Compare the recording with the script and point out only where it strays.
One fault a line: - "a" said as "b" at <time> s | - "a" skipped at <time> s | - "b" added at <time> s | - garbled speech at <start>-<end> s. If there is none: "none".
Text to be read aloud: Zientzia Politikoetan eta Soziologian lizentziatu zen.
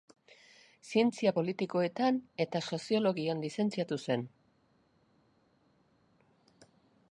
none